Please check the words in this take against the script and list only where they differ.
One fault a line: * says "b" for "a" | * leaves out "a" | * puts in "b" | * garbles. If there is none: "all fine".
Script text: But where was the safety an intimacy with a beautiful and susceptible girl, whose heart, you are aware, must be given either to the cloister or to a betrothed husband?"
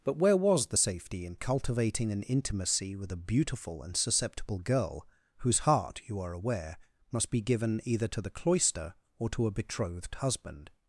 * puts in "in cultivating"